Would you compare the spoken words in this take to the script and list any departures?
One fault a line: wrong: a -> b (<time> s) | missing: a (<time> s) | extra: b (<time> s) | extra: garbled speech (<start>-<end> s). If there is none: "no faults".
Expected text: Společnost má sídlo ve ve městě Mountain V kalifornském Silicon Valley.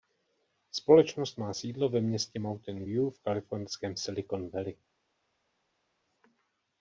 missing: ve (2.0 s)
extra: View (2.8 s)